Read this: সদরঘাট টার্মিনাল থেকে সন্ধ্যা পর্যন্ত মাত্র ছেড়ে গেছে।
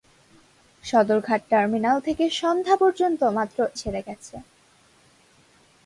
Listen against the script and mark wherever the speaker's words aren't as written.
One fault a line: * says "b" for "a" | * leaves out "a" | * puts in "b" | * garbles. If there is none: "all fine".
all fine